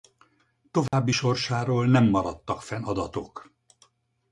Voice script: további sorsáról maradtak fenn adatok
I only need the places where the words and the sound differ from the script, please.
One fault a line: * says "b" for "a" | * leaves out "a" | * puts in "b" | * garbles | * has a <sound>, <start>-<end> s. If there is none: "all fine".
* has a dropout, 0.9-0.9 s
* puts in "nem"